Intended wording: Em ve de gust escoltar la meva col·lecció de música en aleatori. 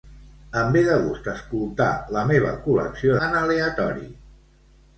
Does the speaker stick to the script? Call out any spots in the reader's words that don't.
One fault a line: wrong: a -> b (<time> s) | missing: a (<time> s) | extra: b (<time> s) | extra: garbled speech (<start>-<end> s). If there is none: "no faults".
missing: de música (3.2 s)